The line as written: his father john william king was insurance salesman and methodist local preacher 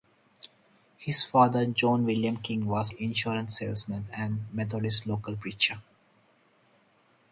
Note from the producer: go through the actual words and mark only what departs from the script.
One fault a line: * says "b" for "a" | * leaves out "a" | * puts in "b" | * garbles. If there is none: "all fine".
all fine